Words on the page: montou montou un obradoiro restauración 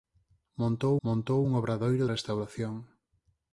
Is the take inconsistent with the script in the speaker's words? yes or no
no